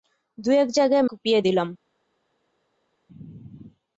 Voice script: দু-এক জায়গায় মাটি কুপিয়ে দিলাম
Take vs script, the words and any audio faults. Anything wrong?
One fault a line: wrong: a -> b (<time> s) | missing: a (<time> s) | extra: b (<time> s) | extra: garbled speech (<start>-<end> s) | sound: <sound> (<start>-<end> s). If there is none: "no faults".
missing: মাটি (1.1 s)